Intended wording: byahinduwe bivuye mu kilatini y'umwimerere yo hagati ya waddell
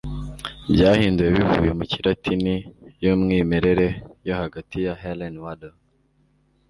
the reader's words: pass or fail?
fail